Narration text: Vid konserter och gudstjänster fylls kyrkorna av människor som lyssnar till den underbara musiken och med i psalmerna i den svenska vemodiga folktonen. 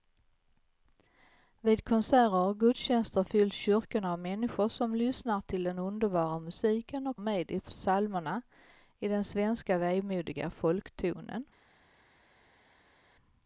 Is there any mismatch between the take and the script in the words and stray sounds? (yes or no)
no